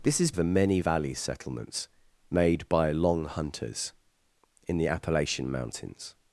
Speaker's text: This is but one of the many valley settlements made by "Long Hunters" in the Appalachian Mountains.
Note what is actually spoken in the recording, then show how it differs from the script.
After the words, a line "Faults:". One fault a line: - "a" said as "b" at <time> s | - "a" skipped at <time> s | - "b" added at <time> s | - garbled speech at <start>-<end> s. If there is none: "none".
This is the many valley settlements made by "Long Hunters" in the Appalachian Mountains.
Faults:
- "but one of" skipped at 0.3 s